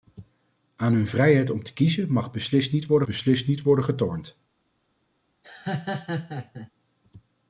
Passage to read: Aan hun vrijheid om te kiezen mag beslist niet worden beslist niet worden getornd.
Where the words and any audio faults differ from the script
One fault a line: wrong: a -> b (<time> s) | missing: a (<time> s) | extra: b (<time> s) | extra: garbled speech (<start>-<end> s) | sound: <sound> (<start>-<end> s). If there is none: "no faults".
sound: laugh (5.4-6.7 s)